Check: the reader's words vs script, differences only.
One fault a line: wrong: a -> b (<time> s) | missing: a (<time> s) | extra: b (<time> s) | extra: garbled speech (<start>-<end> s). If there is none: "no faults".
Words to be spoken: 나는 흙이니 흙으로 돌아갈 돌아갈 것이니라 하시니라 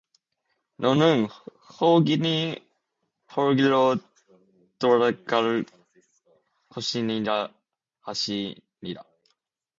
wrong: 나는 -> 너는 (0.8 s)
missing: 돌아갈 (5.7 s)